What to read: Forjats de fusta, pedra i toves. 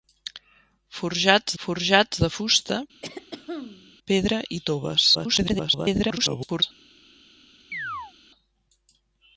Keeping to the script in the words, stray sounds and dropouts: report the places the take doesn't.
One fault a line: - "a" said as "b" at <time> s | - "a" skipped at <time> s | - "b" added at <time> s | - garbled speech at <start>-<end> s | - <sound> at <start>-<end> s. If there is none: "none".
- "forjats" added at 1.6 s
- throat clearing at 3.0-4.0 s
- garbled speech at 5.1-6.6 s
- chirp at 7.7-8.1 s